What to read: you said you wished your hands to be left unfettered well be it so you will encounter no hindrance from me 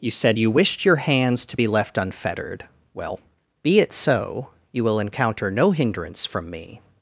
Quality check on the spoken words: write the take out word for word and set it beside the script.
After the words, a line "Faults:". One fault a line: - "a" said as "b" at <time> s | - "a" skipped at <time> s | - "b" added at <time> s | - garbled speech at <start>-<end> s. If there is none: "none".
you said you wished your hands to be left unfettered well be it so you will encounter no hindrance from me
Faults:
none